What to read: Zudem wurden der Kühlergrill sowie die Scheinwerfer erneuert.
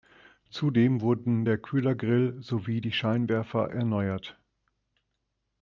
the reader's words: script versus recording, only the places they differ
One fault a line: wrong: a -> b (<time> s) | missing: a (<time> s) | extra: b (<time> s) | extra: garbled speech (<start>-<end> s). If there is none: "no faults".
no faults